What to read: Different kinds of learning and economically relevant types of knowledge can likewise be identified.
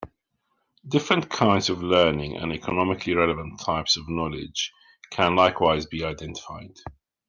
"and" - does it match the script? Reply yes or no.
yes